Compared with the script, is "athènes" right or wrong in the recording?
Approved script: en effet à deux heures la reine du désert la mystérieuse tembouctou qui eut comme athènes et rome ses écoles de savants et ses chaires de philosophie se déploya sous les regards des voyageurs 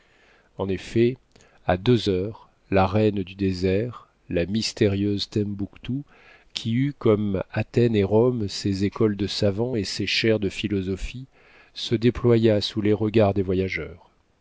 right